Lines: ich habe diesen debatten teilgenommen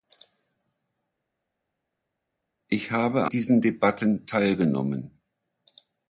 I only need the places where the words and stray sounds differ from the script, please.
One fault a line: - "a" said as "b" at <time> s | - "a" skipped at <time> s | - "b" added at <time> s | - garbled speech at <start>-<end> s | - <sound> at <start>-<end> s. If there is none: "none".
none